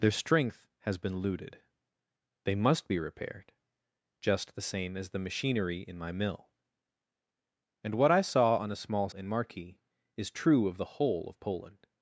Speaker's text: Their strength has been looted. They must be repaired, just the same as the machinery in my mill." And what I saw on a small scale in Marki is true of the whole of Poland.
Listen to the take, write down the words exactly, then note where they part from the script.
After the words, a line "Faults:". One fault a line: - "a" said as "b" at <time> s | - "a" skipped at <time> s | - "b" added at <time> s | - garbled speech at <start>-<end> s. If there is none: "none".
Their strength has been looted. They must be repaired, just the same as the machinery in my mill." And what I saw on a small in Marki is true of the whole of Poland.
Faults:
- "scale" skipped at 9.1 s